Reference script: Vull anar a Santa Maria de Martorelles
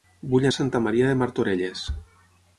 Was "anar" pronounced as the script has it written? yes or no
no